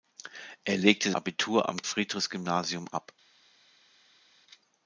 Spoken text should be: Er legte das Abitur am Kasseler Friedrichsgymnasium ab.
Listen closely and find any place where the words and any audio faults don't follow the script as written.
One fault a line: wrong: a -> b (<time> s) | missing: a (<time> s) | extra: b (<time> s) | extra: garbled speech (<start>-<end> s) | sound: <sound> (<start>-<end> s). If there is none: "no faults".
missing: das (1.1 s)
missing: Kasseler (1.8 s)